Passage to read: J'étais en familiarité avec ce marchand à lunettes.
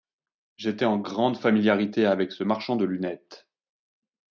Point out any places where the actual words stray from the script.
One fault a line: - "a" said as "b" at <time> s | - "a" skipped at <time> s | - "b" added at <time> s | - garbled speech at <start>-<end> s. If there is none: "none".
- "grande" added at 1.0 s
- "à" said as "de" at 2.8 s